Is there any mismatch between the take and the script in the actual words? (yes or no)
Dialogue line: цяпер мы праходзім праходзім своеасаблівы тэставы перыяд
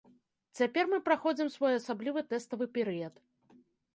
yes